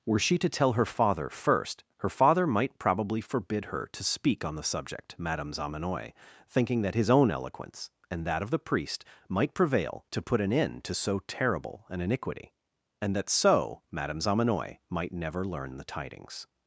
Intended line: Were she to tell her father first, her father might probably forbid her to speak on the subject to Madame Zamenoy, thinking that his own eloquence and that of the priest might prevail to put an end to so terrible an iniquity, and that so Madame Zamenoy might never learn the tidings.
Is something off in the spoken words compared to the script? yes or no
yes